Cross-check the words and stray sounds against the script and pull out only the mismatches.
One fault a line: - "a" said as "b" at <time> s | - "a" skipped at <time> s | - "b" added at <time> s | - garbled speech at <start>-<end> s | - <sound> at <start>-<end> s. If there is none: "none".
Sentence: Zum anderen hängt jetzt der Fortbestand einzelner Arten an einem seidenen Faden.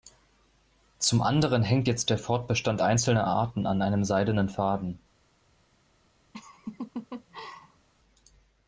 - laugh at 6.3-7.9 s